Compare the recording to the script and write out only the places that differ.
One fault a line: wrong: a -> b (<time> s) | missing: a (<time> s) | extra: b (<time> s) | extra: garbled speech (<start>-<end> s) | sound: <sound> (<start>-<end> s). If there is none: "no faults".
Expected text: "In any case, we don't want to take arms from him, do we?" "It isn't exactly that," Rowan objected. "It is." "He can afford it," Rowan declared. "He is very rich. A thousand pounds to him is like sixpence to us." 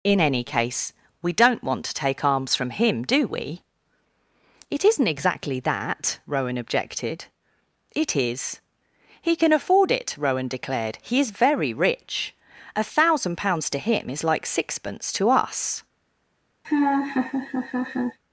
sound: laugh (16.6-18.2 s)